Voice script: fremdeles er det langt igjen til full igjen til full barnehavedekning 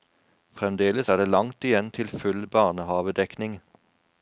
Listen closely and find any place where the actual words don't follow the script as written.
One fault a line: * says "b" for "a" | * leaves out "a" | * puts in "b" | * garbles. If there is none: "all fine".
* leaves out "igjen til full"